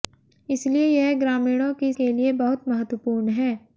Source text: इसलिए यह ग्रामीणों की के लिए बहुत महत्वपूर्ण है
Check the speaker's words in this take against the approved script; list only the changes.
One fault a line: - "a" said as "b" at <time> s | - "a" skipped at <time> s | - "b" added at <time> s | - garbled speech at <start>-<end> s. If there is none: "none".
none